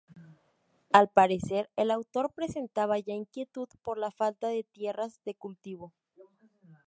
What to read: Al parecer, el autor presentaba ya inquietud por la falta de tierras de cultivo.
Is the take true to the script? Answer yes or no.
yes